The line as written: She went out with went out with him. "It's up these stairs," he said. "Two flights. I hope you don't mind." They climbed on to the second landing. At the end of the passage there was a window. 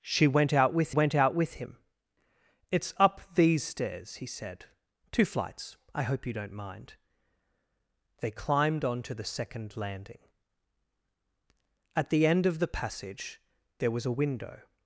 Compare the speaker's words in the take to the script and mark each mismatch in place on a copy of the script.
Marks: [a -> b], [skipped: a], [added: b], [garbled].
She went out with went out with him. "It's up these stairs," he said. "Two flights. I hope you don't mind." They climbed on to the second landing. At the end of the passage there was a window.